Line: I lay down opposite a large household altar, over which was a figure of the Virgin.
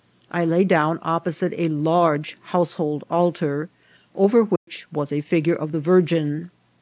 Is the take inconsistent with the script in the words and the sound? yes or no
yes